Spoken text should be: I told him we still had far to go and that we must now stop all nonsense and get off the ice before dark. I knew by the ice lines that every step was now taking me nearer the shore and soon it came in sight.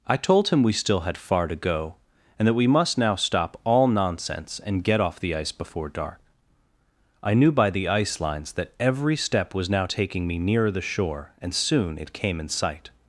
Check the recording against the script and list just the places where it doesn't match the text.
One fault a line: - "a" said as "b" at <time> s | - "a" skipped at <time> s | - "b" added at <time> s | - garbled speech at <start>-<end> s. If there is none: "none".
none